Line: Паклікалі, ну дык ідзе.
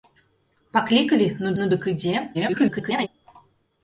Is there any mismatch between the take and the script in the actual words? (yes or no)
yes